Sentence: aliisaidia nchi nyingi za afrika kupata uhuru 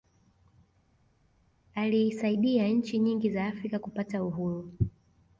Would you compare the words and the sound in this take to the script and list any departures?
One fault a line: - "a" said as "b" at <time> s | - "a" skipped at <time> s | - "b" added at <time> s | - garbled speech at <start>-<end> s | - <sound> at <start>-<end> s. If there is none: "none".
none